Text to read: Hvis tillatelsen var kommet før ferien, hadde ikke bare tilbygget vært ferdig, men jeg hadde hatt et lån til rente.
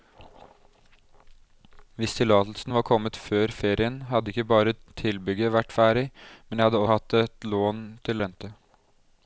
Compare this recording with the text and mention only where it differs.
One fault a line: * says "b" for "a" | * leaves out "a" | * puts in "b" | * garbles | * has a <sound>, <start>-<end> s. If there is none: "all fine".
all fine